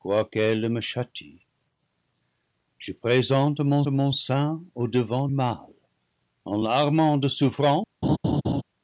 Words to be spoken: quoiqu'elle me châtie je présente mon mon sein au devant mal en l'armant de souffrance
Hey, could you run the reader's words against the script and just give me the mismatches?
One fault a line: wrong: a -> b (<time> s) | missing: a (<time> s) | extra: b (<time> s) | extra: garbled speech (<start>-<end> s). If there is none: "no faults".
no faults